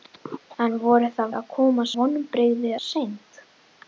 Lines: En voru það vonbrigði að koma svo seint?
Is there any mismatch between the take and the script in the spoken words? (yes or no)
yes